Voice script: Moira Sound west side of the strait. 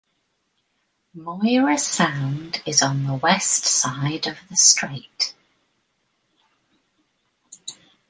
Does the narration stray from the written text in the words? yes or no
yes